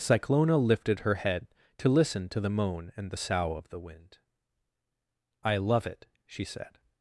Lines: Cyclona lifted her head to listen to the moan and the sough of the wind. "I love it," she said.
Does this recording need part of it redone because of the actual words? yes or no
no